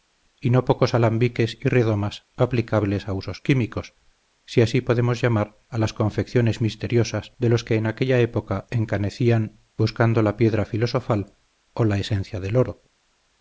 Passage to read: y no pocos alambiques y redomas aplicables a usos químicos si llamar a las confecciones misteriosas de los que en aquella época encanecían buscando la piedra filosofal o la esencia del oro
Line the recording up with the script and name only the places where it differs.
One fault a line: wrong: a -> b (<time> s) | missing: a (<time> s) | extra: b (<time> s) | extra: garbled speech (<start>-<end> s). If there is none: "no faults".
extra: así podemos (4.6 s)